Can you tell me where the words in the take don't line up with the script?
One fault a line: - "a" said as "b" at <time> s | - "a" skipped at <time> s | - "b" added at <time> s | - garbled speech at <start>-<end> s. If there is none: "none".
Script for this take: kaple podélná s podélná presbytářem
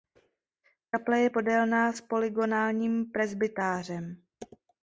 - "je" added at 1.2 s
- "podélná" said as "polygonálním" at 2.0 s